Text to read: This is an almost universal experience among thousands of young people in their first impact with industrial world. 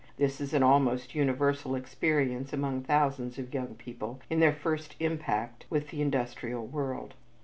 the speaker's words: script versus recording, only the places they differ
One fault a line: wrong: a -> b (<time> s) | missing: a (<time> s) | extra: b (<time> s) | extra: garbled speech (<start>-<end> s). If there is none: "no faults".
extra: the (5.9 s)